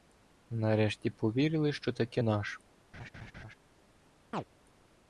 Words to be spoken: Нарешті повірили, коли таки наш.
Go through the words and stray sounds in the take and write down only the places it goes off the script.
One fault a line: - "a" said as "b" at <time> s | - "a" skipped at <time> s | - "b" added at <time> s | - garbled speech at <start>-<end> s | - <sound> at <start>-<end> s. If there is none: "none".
- "коли" said as "що" at 1.7 s
- laugh at 2.9-3.5 s
- chirp at 4.3-4.4 s